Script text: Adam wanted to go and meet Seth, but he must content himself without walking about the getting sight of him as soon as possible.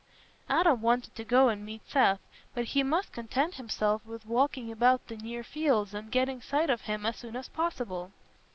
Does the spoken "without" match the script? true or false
false